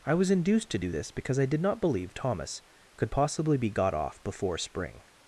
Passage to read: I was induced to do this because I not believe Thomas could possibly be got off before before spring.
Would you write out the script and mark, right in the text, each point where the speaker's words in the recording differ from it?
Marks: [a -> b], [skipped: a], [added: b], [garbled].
I was induced to do this because I [added: did] not believe Thomas could possibly be got off before [skipped: before] spring.